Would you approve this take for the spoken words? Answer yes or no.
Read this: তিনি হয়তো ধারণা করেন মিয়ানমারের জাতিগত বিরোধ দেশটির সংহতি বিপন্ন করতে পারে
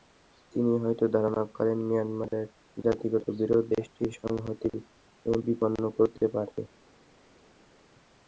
yes